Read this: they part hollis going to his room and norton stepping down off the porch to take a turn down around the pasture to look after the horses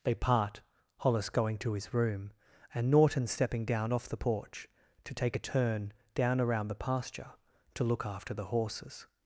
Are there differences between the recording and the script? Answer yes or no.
no